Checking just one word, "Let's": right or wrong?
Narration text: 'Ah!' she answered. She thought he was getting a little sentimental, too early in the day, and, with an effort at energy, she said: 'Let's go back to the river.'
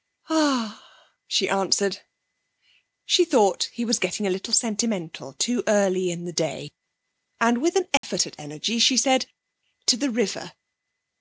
wrong